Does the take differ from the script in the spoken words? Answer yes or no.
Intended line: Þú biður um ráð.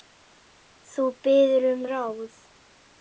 no